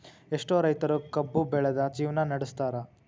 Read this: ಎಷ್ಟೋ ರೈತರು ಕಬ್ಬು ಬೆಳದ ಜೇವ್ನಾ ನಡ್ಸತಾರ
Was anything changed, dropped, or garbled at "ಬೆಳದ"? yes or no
no